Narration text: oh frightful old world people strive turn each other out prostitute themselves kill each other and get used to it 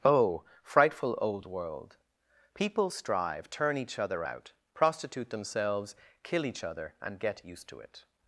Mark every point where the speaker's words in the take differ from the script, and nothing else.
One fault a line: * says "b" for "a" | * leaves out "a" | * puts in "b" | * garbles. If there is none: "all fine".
all fine